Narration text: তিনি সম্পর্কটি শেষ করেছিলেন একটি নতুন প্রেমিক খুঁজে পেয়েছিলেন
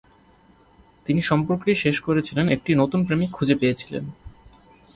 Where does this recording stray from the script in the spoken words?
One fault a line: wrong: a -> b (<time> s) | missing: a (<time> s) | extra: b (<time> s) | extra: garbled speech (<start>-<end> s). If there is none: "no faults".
no faults